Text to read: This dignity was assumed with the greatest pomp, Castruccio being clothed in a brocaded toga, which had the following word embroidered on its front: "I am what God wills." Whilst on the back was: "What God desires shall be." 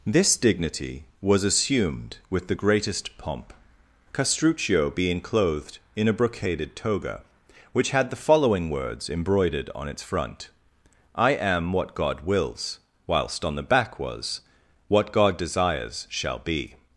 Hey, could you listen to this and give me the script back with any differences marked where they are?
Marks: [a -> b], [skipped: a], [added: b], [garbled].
This dignity was assumed with the greatest pomp, Castruccio being clothed in a brocaded toga, which had the following [word -> words] embroidered on its front: "I am what God wills." Whilst on the back was: "What God desires shall be."